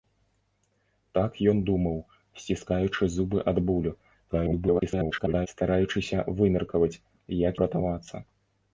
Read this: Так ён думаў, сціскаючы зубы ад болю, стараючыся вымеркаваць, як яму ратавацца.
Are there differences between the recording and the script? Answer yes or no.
yes